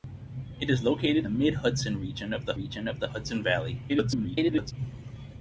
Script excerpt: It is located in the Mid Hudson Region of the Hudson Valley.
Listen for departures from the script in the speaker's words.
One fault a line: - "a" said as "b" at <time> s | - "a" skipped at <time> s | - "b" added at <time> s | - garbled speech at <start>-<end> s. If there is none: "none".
- "in" skipped at 1.3 s
- "Region of the" added at 2.6 s
- garbled speech at 3.9-4.7 s